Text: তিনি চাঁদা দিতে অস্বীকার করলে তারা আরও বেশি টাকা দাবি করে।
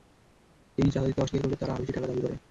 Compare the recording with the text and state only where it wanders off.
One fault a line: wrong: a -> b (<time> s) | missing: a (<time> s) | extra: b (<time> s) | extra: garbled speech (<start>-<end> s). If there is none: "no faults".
no faults